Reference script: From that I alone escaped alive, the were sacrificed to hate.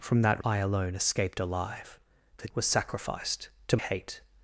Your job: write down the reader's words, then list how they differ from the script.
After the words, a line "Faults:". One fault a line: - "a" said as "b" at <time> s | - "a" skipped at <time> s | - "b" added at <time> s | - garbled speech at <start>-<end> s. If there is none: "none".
From that I alone escaped alive, the were sacrificed to hate.
Faults:
none